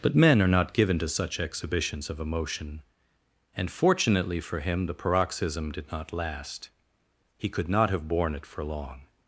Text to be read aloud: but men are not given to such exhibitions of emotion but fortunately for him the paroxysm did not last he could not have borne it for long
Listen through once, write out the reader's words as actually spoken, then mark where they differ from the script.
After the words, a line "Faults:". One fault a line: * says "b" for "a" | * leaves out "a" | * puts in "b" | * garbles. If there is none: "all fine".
but men are not given to such exhibitions of emotion and fortunately for him the paroxysm did not last he could not have borne it for long
Faults:
* says "and" for "but"